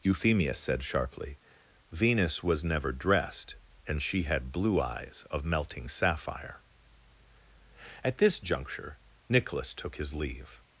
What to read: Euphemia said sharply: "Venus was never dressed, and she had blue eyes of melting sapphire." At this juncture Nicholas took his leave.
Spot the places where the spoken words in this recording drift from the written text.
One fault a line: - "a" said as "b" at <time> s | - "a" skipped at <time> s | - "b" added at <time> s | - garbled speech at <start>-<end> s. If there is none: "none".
none